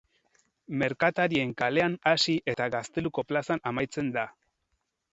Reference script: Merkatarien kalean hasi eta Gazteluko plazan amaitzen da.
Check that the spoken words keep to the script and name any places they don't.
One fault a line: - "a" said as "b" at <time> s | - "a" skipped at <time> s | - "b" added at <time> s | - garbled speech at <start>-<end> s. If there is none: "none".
none